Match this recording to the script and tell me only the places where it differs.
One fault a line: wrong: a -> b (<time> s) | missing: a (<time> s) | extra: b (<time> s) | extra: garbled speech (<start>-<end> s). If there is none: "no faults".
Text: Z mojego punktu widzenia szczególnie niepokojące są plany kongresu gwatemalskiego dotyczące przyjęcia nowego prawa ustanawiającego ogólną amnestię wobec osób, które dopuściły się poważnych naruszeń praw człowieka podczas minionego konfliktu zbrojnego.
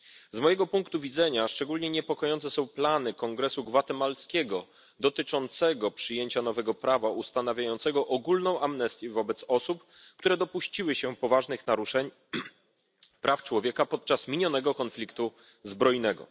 no faults